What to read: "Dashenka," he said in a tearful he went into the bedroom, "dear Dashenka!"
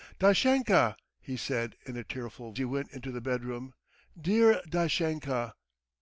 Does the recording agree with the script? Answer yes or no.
yes